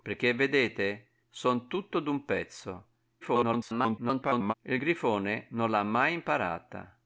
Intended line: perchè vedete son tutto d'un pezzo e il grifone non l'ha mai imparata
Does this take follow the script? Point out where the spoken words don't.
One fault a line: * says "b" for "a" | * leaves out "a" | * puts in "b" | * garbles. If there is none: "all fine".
* garbles